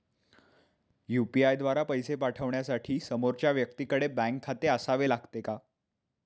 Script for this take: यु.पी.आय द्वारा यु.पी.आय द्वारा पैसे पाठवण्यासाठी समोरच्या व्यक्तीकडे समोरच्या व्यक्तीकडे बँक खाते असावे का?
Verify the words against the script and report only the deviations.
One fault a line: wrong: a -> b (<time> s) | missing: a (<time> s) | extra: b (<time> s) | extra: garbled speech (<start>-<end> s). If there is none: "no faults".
missing: यु.पी.आय द्वारा (1.8 s)
missing: समोरच्या व्यक्तीकडे (4.1 s)
extra: लागते (5.1 s)